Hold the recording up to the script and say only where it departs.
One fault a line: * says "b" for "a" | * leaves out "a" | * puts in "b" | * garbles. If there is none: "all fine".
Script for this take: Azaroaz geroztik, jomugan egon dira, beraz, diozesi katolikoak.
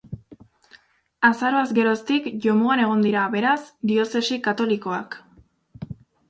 all fine